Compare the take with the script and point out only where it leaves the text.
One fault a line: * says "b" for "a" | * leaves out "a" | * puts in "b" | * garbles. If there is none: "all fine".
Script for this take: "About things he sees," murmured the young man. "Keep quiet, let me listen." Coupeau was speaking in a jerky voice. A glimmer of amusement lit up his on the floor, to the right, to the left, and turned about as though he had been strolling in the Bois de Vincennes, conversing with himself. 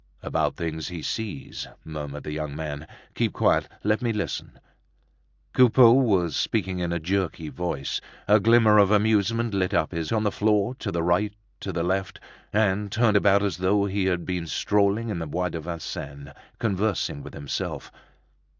all fine